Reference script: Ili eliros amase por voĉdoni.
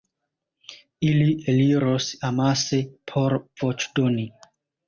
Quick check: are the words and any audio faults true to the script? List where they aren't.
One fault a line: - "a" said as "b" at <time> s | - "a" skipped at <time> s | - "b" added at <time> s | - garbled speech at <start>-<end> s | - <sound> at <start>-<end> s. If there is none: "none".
none